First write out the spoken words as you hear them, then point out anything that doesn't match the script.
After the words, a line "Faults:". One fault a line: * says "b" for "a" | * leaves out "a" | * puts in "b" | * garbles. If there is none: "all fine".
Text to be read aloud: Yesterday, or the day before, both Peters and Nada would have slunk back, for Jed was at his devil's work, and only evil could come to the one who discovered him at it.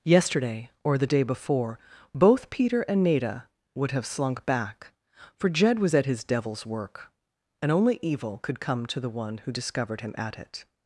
Yesterday, or the day before, both Peter and Nada would have slunk back, for Jed was at his devil's work, and only evil could come to the one who discovered him at it.
Faults:
* says "Peter" for "Peters"